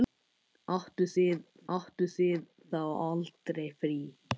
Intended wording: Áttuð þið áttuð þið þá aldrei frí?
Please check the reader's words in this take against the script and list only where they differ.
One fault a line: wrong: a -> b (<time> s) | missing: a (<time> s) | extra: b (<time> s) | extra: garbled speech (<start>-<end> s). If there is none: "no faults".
no faults